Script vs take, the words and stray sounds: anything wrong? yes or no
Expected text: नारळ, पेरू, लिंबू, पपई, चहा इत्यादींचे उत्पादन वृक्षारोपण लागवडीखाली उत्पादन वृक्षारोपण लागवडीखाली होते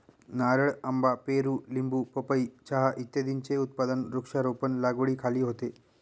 yes